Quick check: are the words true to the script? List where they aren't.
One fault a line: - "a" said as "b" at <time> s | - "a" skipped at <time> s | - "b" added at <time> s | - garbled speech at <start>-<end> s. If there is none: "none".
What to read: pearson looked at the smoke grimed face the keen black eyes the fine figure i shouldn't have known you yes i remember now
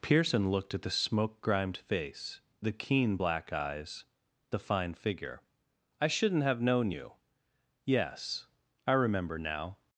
none